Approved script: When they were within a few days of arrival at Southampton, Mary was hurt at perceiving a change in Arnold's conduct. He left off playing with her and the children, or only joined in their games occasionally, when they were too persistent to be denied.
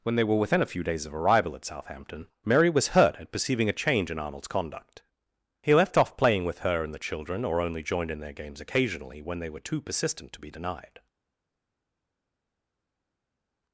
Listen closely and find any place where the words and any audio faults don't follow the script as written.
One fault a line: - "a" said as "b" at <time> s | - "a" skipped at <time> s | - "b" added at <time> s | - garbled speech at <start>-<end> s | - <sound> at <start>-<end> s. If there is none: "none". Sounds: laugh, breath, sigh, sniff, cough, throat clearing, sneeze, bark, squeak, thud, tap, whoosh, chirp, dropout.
none